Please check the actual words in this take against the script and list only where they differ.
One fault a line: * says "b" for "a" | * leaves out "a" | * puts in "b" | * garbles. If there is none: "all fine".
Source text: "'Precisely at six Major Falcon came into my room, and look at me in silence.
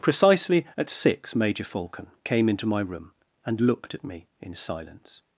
* says "looked" for "look"